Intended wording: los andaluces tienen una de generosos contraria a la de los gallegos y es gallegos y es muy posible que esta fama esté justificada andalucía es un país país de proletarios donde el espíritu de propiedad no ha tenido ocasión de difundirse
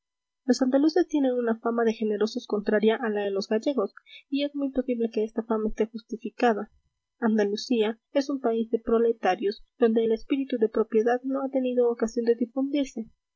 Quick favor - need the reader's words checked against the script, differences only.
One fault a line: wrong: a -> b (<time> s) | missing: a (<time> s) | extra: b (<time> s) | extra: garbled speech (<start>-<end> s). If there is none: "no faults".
extra: fama (1.6 s)
missing: gallegos y es (4.5 s)
missing: país (8.7 s)